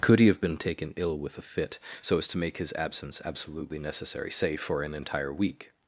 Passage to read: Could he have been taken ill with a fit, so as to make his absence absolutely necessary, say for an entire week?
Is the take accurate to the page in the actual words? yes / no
yes